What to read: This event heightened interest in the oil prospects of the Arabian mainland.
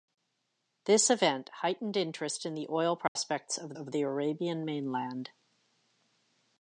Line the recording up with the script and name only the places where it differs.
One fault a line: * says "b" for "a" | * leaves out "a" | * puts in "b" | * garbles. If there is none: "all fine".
* puts in "of"